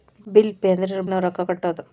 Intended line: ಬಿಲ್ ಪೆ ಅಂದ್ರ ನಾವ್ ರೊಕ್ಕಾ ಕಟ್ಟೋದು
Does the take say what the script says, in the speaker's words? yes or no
yes